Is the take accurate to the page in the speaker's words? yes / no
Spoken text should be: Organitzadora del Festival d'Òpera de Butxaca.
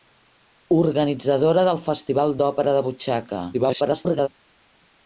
no